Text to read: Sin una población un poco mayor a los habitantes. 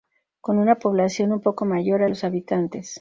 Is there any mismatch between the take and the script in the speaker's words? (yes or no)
yes